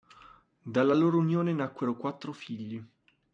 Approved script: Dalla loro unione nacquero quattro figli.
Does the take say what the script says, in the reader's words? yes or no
yes